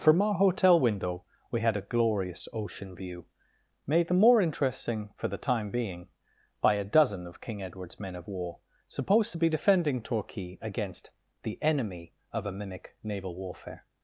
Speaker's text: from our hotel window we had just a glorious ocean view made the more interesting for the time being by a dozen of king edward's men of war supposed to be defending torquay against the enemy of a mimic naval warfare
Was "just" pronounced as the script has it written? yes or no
no